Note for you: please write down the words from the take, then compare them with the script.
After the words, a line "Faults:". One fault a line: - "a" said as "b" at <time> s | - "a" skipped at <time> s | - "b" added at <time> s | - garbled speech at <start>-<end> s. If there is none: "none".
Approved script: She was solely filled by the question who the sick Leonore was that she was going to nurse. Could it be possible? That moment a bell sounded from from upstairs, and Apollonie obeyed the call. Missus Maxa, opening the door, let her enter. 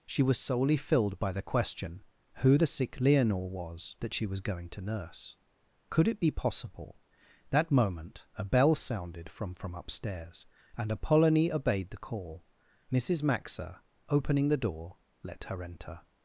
She was solely filled by the question who the sick Leonore was that she was going to nurse. Could it be possible? That moment a bell sounded from from upstairs, and Apollonie obeyed the call. Missus Maxa, opening the door, let her enter.
Faults:
none